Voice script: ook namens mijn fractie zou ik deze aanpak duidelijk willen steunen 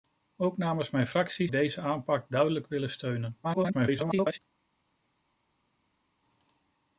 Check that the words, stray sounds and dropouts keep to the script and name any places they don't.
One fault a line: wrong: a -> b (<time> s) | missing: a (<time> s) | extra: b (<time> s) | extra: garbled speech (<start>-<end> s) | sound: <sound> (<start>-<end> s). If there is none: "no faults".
missing: zou (1.5 s)
extra: garbled speech (3.4-4.4 s)